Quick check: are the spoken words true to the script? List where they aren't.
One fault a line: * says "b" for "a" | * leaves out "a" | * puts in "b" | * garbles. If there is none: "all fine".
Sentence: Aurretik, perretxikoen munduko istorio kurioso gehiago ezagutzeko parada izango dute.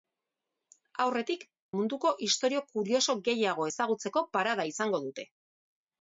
* leaves out "perretxikoen"